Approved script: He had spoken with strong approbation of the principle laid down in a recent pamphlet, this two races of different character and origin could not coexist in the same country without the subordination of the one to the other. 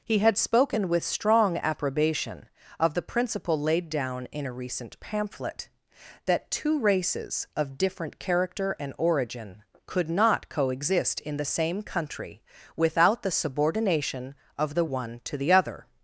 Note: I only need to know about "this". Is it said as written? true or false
false